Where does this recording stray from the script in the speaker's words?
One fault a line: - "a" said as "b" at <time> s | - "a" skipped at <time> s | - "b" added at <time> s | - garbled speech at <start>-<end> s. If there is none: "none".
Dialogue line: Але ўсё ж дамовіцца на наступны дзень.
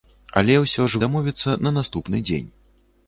none